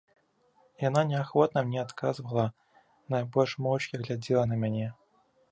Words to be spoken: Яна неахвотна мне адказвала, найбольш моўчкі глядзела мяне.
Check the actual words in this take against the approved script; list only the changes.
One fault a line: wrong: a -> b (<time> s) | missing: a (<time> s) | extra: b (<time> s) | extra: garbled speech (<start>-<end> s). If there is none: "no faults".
extra: на (4.5 s)